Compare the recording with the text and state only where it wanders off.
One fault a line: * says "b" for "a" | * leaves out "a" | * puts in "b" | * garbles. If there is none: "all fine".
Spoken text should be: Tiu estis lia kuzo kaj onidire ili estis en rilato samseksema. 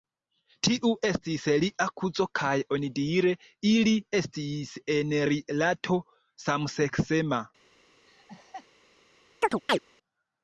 all fine